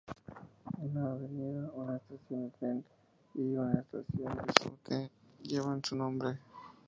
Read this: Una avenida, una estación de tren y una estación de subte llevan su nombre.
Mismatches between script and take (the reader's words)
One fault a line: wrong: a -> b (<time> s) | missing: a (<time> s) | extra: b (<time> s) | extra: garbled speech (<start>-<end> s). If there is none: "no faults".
no faults